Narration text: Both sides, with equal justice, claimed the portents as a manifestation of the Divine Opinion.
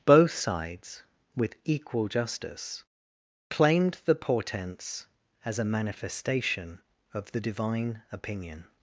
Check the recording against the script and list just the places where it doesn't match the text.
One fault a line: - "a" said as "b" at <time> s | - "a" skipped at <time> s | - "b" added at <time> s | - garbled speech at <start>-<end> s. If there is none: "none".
none